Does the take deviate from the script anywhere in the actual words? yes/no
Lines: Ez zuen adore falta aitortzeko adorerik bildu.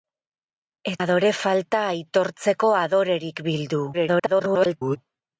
yes